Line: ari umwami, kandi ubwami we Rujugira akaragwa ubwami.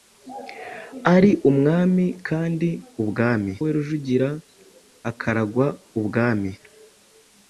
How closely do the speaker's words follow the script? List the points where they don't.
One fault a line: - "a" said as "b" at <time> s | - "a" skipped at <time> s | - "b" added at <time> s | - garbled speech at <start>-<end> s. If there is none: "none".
none